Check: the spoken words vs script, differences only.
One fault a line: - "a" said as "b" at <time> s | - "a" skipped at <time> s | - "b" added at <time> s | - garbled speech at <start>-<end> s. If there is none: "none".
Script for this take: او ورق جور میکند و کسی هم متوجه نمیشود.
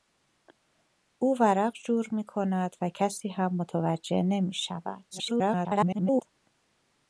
- garbled speech at 5.1-6.2 s